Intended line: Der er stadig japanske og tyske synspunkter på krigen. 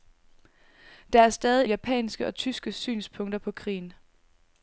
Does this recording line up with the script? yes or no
yes